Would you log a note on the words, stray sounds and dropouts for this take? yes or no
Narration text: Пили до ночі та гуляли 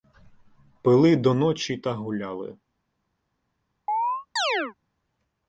yes